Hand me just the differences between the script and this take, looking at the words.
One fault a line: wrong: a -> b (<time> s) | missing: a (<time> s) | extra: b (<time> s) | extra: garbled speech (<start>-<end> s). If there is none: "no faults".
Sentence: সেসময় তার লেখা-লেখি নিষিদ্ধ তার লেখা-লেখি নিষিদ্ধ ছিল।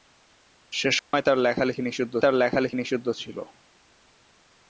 no faults